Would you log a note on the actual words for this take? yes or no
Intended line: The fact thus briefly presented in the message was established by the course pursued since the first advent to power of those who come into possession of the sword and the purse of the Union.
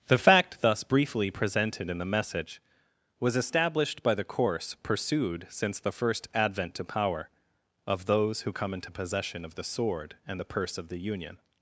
no